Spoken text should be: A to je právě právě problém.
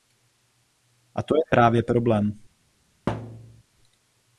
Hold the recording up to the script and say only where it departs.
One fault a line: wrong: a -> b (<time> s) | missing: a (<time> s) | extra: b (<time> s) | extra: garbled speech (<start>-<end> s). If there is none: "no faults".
missing: právě (1.8 s)